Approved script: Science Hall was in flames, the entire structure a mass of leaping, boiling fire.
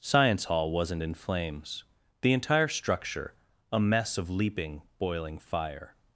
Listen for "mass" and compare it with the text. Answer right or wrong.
wrong